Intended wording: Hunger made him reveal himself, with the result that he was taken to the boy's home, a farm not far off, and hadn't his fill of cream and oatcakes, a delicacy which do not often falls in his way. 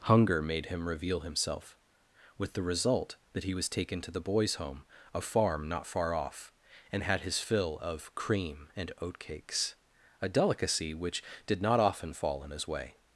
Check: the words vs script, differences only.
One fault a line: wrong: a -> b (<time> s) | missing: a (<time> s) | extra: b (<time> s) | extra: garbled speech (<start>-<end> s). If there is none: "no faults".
wrong: hadn't -> had (7.0 s)
wrong: do -> did (11.4 s)
wrong: falls -> fall (12.1 s)